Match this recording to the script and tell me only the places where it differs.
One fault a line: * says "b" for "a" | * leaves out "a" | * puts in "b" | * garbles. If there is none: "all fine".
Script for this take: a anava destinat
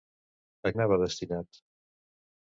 all fine